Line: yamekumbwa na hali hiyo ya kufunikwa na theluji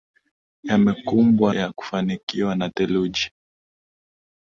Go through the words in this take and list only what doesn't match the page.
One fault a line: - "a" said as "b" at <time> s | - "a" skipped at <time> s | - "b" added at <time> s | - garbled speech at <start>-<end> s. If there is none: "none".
- "na hali hiyo" skipped at 1.5 s